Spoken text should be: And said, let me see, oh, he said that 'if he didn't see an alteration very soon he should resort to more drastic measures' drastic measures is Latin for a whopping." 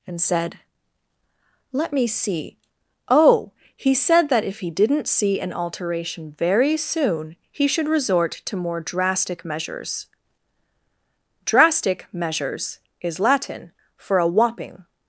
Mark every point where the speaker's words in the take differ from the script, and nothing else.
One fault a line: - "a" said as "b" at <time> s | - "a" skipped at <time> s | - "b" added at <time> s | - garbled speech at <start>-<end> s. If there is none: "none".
none